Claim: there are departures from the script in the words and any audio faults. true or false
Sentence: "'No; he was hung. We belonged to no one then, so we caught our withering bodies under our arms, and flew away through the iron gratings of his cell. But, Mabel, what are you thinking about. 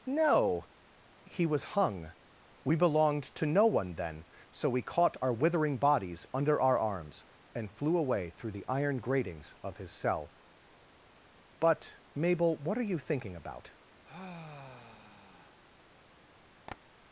true